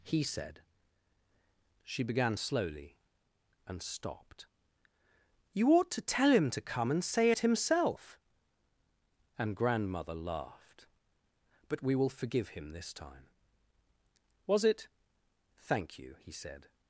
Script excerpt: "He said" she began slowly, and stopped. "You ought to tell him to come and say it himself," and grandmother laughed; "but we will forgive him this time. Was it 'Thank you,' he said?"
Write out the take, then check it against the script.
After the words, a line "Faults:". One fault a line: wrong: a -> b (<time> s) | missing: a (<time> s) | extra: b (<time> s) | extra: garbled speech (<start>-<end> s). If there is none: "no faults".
"He said" she began slowly, and stopped. "You ought to tell him to come and say it himself," and grandmother laughed; "but we will forgive him this time. Was it 'Thank you,' he said?"
Faults:
no faults